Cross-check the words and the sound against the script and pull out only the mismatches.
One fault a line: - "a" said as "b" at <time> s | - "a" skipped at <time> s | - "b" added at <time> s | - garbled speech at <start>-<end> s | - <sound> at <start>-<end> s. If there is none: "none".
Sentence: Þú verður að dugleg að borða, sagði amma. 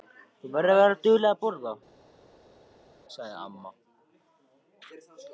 - "vera" added at 0.8 s